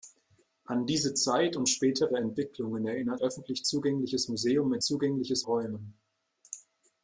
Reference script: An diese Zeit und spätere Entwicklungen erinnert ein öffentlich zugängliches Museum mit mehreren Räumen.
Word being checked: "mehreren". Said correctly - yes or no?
no